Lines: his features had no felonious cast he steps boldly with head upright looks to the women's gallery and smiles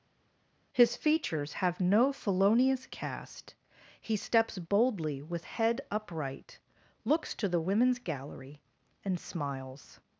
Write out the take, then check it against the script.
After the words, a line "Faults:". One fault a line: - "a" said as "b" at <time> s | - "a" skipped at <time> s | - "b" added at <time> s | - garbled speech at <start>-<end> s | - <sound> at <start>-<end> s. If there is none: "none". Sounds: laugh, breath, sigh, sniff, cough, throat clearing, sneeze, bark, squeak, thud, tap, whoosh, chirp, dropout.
his features have no felonious cast he steps boldly with head upright looks to the women's gallery and smiles
Faults:
- "had" said as "have" at 1.5 s